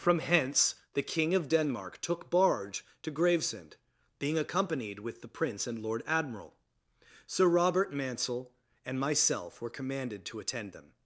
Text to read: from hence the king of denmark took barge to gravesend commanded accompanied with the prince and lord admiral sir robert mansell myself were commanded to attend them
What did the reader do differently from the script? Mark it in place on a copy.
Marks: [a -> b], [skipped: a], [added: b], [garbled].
from hence the king of denmark took barge to gravesend [commanded -> being] accompanied with the prince and lord admiral sir robert mansell [added: and] myself were commanded to attend them